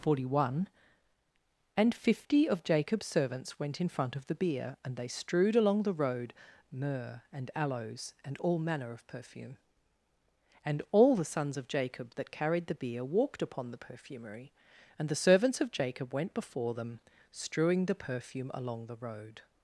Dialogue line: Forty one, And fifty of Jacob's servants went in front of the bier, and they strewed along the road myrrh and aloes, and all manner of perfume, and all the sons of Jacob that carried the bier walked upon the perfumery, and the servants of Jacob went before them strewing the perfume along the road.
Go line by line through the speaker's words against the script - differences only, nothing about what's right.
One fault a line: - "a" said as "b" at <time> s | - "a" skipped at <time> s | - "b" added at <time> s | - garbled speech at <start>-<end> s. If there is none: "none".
none